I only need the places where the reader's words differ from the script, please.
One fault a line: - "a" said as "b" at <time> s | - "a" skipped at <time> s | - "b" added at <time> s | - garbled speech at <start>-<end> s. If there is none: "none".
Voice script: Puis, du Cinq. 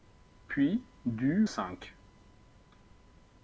none